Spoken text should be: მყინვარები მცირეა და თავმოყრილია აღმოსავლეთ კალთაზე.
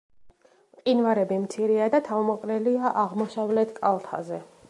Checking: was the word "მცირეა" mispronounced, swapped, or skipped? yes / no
no